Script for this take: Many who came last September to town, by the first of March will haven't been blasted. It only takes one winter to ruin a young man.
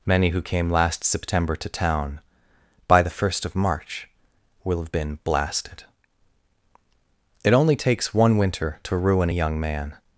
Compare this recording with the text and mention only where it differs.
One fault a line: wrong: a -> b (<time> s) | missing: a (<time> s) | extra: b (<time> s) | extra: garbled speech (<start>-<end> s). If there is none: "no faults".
wrong: haven't -> have (4.8 s)